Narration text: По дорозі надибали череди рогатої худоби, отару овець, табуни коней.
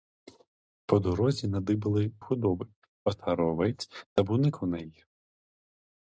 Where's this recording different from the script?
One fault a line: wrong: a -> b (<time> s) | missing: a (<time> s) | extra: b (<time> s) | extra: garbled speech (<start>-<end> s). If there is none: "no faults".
missing: череди рогатої (2.1 s)